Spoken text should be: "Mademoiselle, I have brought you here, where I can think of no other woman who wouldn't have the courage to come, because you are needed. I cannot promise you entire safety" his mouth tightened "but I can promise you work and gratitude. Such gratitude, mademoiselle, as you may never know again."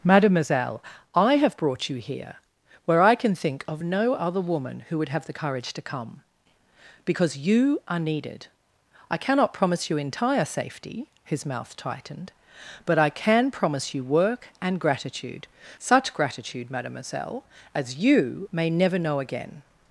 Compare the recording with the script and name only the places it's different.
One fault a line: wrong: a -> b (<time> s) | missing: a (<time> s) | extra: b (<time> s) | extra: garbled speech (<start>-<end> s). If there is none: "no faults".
wrong: wouldn't -> would (5.0 s)